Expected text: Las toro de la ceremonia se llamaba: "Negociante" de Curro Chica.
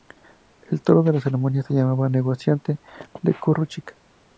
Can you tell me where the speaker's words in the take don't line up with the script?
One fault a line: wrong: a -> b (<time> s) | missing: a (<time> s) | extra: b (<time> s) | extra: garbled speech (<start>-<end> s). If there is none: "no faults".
wrong: Las -> El (0.6 s)